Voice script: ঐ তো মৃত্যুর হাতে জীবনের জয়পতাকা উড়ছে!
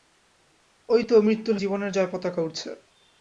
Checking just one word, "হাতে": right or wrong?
wrong